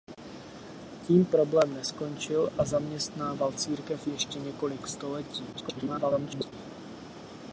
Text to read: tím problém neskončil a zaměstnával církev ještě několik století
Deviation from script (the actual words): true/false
true